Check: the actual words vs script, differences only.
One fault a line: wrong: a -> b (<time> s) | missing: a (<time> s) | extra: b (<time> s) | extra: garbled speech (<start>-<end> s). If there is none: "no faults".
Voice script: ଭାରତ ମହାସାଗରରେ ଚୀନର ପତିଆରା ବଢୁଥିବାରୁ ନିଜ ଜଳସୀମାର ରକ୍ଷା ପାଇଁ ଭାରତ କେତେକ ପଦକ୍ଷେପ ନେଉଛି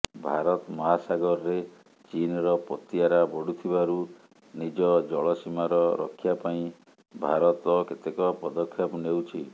no faults